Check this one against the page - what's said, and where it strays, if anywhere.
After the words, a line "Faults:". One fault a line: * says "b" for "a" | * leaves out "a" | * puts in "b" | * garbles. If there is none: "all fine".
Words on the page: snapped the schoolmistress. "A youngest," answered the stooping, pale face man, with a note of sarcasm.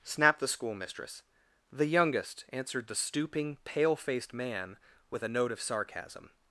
snapped the schoolmistress. "The youngest," answered the stooping, pale faced man, with a note of sarcasm.
Faults:
* says "The" for "A"
* says "faced" for "face"